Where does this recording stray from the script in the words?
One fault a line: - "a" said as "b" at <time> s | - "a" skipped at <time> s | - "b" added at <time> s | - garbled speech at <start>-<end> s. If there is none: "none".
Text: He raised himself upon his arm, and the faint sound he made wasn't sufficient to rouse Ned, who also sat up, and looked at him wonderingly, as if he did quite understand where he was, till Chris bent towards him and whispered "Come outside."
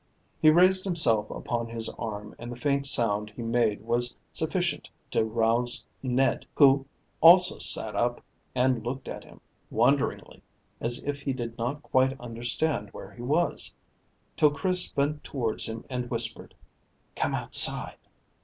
- "wasn't" said as "was" at 3.8 s
- "not" added at 11.6 s